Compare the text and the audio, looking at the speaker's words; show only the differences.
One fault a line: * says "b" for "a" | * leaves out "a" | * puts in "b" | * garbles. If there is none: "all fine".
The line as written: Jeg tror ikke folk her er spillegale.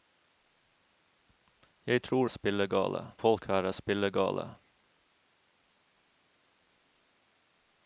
* says "spillegale" for "ikke"